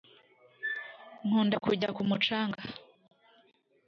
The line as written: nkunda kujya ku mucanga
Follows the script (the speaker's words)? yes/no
yes